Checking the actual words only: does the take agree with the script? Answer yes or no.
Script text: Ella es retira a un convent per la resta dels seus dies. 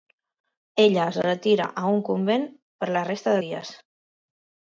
no